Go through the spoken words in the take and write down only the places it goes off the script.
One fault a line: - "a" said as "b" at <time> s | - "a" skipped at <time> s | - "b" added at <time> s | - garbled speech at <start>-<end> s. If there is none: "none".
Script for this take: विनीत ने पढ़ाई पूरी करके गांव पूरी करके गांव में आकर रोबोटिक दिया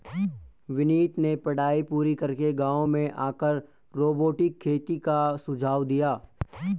- "पूरी करके गांव में आकर रोबोटिक" said as "में आकर रोबोटिक खेती का सुझाव" at 2.9 s